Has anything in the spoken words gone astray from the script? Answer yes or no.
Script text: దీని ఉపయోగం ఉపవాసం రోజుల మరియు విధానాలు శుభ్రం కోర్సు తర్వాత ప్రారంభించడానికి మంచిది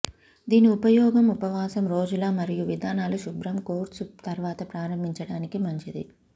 no